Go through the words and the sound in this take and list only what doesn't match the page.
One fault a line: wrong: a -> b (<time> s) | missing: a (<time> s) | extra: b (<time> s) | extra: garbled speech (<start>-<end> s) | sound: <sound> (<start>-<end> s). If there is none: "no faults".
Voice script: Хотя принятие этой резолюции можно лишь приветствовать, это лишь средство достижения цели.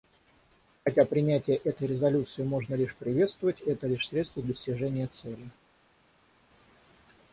no faults